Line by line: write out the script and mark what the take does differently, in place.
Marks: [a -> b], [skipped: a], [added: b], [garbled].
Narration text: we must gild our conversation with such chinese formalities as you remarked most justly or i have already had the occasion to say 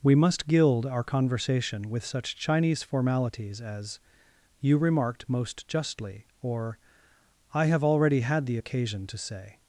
we must gild our conversation with such chinese formalities as you remarked most justly or i have already had the occasion to say